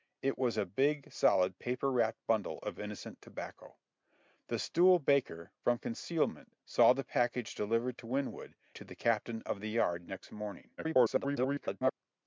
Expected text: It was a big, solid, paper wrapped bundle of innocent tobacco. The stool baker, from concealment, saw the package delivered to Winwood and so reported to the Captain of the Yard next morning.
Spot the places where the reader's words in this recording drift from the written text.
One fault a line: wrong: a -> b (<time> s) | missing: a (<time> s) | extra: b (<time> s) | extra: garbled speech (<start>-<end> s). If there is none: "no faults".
missing: and so reported (8.6 s)
extra: garbled speech (10.8-11.9 s)